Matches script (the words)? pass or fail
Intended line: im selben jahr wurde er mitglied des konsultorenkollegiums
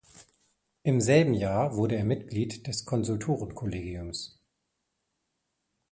pass